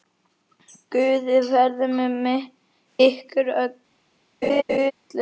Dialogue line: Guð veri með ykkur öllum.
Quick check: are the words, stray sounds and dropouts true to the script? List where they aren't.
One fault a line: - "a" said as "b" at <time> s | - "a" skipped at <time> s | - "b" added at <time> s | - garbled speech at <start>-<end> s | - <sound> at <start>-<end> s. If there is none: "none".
- laugh at 4.4-4.9 s